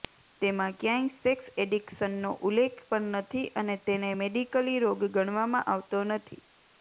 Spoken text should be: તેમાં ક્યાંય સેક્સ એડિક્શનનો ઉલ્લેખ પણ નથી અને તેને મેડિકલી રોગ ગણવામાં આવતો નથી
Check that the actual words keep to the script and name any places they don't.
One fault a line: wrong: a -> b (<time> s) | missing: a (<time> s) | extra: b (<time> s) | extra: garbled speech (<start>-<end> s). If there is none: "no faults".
no faults